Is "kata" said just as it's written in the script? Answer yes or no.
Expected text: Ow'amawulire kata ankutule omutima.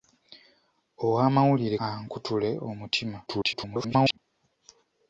no